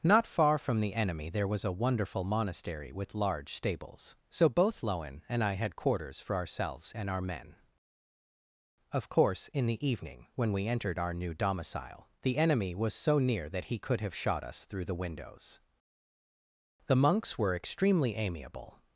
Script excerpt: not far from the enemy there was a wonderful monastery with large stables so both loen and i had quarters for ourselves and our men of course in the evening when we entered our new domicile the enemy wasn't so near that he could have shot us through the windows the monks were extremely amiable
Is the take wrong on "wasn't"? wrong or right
wrong